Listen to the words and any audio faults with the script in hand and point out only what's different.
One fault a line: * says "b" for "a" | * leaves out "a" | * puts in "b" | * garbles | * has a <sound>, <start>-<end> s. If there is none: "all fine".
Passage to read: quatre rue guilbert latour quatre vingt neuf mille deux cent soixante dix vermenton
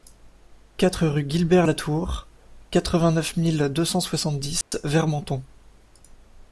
* has a dropout, 4.6-4.7 s